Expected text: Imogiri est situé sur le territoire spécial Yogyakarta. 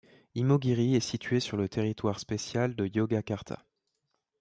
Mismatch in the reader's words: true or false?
true